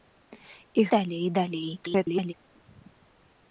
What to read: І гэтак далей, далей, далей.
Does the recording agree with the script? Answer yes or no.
no